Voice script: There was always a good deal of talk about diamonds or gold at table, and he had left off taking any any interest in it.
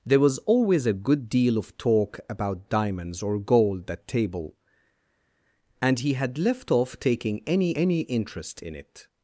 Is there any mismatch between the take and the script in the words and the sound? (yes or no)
no